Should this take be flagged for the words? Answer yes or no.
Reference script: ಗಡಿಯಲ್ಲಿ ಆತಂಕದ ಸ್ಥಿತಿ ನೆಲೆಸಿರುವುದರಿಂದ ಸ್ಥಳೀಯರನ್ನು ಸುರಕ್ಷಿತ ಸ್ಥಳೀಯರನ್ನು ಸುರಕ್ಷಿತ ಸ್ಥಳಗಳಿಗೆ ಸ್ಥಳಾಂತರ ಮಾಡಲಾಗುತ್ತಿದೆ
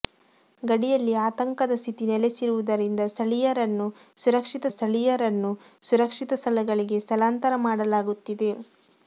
no